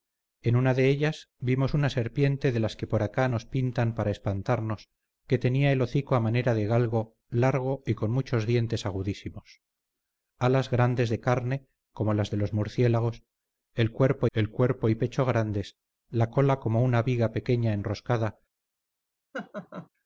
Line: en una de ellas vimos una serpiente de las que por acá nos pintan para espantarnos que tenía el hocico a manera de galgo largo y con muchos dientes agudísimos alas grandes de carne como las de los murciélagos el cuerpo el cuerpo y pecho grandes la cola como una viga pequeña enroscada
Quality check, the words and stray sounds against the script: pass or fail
fail